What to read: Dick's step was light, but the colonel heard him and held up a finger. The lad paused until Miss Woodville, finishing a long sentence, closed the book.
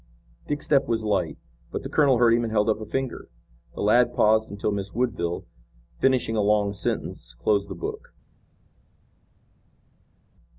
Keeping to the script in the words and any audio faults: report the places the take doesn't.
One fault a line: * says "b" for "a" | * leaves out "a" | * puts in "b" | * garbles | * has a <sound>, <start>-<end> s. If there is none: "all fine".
all fine